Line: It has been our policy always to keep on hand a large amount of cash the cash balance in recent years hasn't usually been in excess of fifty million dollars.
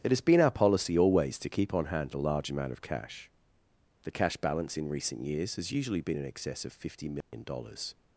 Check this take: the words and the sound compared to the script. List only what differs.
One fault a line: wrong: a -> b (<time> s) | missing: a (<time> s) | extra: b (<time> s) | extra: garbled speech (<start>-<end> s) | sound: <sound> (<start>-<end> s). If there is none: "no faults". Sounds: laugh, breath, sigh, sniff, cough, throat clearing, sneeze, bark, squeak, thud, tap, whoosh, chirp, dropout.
wrong: hasn't -> has (5.6 s)
sound: dropout (7.2-7.3 s)